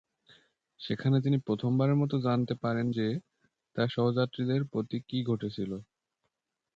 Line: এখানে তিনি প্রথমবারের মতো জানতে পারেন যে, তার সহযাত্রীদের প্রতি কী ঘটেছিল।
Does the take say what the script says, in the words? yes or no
no